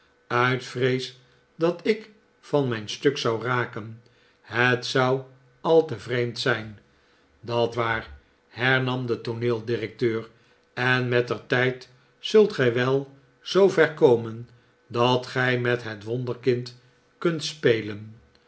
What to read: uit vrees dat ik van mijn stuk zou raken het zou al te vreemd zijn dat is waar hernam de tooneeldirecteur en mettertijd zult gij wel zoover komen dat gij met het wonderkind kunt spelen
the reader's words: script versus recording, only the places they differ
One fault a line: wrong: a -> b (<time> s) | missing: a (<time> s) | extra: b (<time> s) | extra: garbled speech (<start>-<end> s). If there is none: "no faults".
missing: is (7.8 s)